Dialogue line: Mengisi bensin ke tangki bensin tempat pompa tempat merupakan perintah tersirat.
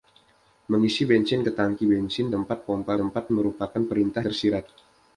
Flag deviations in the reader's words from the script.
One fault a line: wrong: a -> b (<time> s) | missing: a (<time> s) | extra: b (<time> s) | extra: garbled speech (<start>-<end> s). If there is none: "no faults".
no faults